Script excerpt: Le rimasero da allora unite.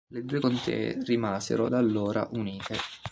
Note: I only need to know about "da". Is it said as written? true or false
true